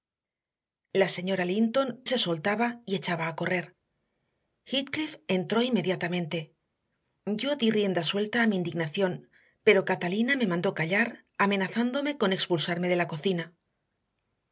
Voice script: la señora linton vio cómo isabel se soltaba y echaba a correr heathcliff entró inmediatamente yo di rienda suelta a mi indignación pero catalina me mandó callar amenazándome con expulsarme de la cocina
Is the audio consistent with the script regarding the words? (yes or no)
no